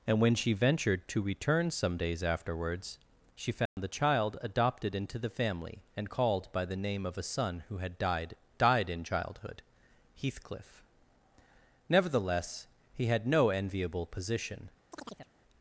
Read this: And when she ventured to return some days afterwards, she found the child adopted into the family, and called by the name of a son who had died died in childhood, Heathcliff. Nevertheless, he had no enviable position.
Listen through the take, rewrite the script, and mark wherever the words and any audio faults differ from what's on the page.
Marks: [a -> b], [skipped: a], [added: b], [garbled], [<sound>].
And when she ventured to return some days afterwards, she found [dropout] the child adopted into the family, and called by the name of a son who had died died in childhood, Heathcliff. Nevertheless, he had no enviable position. [chirp]